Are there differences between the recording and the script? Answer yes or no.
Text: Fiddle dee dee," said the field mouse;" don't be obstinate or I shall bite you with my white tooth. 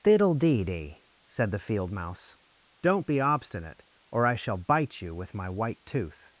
no